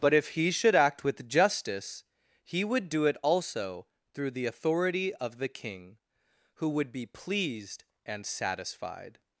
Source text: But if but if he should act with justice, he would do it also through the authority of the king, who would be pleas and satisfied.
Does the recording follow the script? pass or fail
fail